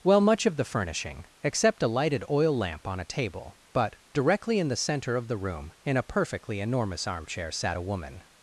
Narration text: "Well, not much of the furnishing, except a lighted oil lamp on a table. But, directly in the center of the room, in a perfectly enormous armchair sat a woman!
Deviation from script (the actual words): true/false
true